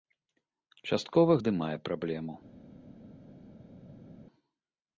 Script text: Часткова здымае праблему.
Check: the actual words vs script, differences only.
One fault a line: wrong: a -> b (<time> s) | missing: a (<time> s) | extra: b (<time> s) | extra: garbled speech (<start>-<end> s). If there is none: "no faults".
no faults